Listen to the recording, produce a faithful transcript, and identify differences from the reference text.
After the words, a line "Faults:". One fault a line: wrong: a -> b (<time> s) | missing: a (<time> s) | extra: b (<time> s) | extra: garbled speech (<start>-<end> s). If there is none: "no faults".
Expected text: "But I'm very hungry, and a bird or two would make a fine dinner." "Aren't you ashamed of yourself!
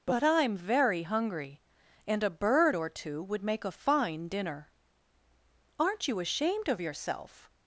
"But I'm very hungry, and a bird or two would make a fine dinner." "Aren't you ashamed of yourself!
Faults:
no faults